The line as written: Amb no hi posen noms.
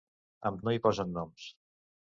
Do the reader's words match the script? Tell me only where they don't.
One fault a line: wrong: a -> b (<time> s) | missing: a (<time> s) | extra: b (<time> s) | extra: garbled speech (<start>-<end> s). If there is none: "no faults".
no faults